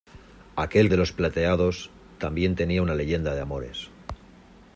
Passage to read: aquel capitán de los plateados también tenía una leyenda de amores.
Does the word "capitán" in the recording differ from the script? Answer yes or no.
yes